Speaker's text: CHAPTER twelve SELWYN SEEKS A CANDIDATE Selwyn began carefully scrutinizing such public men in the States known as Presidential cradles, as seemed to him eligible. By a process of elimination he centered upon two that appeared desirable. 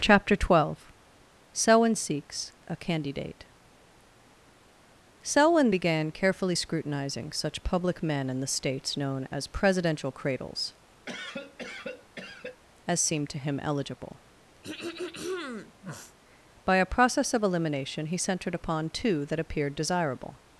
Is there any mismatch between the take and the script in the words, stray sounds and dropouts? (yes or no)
yes